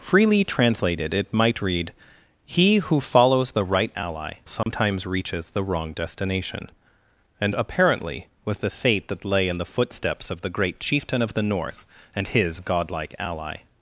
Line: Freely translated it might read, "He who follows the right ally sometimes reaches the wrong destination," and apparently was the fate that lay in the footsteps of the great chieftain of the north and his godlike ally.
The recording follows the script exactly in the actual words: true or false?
true